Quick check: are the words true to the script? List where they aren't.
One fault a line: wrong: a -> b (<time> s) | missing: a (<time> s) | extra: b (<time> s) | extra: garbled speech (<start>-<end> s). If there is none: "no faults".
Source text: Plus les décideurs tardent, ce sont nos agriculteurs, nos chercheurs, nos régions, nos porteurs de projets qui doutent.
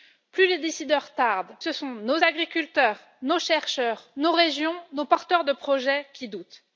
no faults